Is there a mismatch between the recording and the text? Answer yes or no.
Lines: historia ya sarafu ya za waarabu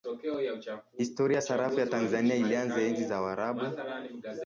yes